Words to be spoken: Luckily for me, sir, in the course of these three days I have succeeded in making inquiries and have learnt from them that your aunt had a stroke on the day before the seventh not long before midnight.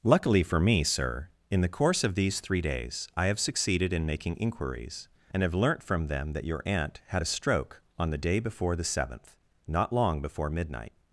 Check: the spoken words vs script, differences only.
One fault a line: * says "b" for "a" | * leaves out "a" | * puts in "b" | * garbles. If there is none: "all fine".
all fine